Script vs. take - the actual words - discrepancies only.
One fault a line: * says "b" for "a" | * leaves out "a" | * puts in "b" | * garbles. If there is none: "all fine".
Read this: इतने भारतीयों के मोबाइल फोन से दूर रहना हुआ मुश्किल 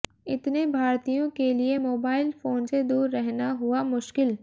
* puts in "लिए"